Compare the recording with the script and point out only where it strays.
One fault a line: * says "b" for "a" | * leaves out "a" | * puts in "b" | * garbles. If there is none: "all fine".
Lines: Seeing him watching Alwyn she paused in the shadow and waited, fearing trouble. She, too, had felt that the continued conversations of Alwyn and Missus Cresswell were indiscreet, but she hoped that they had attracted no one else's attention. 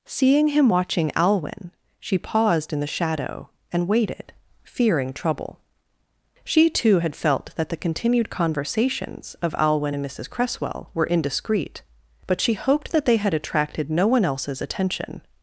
all fine